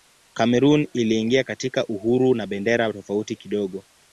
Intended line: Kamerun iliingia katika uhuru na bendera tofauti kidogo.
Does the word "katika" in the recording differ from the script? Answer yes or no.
no